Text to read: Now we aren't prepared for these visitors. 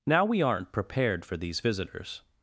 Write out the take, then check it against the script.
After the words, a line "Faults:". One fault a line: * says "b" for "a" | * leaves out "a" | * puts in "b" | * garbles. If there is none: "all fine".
Now we aren't prepared for these visitors.
Faults:
all fine